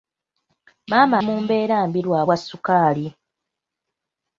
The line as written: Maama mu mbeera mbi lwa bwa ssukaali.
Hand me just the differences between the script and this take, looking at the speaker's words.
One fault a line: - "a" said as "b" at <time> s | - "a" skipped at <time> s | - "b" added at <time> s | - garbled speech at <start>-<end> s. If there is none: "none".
none